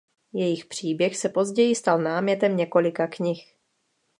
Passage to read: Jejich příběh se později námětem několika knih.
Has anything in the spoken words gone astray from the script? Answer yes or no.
yes